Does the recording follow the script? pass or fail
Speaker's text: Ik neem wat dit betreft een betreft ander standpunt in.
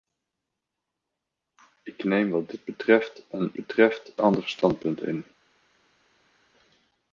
pass